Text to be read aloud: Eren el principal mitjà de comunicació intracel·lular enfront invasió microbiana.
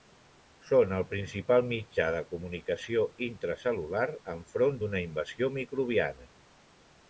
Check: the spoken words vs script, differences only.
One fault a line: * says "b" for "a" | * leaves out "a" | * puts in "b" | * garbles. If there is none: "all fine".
* says "Són" for "Eren"
* puts in "d'una"